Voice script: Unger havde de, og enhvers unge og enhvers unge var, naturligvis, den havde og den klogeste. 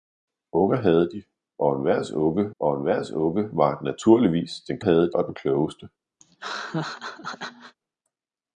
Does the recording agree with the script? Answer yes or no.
yes